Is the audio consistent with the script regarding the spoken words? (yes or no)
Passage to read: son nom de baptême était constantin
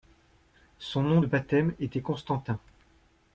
yes